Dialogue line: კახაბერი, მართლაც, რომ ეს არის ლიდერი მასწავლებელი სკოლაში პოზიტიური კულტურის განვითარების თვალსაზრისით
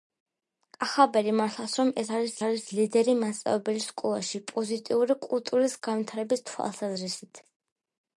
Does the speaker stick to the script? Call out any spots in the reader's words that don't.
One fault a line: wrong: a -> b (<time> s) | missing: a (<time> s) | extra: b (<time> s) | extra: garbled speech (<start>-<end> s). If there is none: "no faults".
extra: არის (2.5 s)